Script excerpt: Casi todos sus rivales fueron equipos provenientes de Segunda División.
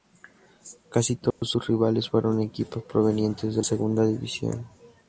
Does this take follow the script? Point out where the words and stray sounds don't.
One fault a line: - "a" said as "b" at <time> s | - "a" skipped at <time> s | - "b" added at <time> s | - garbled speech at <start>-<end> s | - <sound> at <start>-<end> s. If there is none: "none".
- dropout at 1.3-1.4 s